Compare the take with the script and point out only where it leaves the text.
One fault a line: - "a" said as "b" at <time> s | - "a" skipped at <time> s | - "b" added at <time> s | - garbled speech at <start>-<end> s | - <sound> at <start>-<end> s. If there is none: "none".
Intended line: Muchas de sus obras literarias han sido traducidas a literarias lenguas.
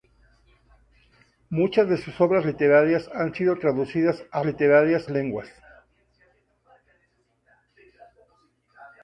none